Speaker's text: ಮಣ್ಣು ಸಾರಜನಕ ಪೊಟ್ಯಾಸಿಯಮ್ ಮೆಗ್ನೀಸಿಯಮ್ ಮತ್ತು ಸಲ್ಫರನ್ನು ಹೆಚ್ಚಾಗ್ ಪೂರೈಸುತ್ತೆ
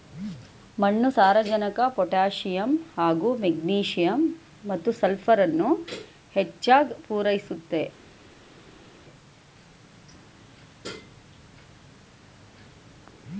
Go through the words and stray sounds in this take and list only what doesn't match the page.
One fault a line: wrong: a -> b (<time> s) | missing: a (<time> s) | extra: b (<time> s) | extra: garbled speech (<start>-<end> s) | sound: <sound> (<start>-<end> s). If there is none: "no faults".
extra: ಹಾಗೂ (3.0 s)